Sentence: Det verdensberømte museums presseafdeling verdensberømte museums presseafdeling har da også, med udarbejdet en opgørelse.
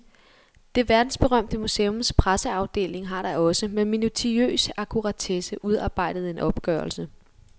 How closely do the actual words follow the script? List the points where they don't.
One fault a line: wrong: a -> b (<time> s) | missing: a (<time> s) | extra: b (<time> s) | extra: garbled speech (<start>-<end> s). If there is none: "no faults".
missing: verdensberømte museums presseafdeling (3.1 s)
extra: minutiøs akkuratesse (3.9 s)